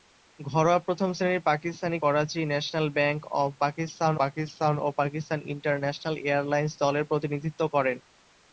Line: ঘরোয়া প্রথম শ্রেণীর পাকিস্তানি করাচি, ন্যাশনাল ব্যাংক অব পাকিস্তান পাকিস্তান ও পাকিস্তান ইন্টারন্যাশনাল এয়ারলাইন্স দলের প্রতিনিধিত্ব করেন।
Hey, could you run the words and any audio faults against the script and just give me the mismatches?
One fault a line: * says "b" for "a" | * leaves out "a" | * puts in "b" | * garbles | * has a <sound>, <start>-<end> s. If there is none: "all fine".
all fine